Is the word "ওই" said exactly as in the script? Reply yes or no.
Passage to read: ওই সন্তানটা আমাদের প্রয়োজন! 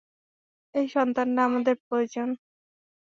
no